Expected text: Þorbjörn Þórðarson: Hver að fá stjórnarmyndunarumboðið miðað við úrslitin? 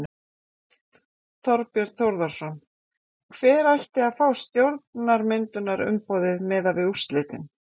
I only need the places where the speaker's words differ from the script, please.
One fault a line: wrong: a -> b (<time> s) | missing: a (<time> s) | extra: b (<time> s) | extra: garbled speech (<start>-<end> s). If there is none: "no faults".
extra: ætti (3.7 s)